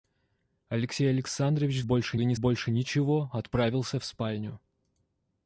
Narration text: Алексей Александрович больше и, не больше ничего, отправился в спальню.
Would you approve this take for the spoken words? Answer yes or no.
yes